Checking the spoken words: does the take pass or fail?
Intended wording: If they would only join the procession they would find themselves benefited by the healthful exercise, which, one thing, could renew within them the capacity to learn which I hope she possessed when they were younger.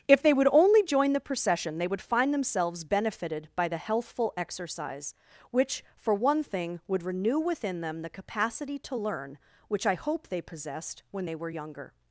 fail